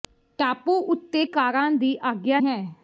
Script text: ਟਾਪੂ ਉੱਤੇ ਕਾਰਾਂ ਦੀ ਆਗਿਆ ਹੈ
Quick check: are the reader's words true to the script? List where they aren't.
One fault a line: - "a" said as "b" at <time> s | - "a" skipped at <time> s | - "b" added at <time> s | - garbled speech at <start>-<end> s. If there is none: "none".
none